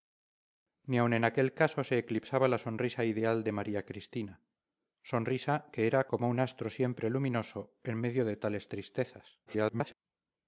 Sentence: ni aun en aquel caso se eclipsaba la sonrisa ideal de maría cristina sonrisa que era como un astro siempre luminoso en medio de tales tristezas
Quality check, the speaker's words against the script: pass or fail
fail